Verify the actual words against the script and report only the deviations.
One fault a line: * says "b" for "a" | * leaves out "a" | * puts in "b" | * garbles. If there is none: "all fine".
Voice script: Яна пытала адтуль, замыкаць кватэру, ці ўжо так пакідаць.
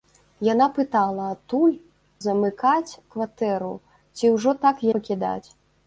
all fine